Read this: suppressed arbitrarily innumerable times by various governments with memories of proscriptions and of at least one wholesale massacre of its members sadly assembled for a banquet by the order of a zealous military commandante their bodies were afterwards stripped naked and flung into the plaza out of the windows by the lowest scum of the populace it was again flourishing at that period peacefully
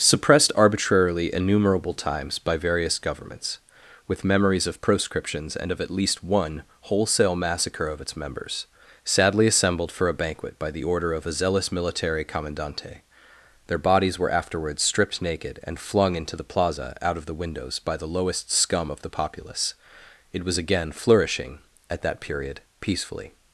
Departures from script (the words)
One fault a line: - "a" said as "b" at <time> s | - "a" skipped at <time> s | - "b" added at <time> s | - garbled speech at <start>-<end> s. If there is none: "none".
none